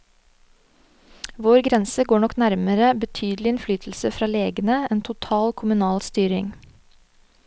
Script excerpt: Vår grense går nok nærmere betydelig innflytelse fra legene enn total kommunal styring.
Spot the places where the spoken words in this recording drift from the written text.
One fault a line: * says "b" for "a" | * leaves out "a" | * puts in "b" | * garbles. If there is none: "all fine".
all fine